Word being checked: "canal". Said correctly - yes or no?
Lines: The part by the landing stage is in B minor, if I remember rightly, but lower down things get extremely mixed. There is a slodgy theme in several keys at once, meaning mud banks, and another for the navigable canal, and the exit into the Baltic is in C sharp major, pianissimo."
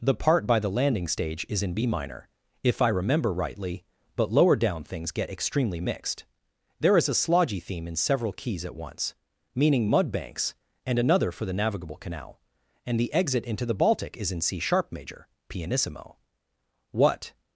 yes